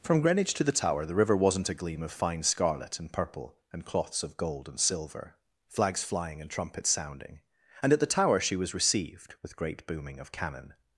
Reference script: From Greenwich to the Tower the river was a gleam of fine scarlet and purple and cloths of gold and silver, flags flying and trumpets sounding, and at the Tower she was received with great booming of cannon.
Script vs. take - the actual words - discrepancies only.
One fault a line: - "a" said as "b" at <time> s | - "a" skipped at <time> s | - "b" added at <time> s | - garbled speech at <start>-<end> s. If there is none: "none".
- "was" said as "wasn't" at 1.4 s